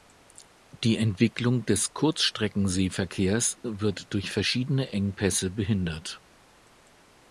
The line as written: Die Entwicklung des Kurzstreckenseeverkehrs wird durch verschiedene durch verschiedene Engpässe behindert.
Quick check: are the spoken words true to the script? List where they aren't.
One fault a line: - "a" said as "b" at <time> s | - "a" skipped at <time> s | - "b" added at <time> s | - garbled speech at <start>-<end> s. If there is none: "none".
- "durch verschiedene" skipped at 4.9 s